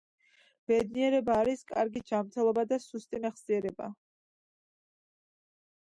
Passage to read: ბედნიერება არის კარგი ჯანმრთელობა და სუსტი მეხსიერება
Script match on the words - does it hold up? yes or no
yes